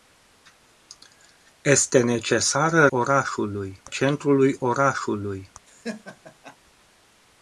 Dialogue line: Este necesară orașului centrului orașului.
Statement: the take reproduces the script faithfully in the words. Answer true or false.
true